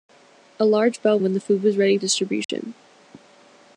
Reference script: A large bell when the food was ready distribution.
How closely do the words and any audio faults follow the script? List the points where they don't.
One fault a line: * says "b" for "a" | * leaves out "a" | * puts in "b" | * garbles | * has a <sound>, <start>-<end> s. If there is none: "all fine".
* has a dropout, 2.4-2.5 s